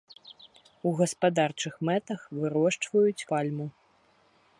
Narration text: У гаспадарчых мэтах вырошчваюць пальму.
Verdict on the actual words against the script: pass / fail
pass